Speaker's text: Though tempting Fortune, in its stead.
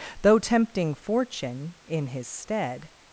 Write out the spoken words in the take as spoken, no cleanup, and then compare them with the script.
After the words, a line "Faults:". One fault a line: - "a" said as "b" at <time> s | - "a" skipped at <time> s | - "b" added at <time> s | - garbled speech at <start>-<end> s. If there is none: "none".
Though tempting Fortune, in his stead.
Faults:
- "its" said as "his" at 2.1 s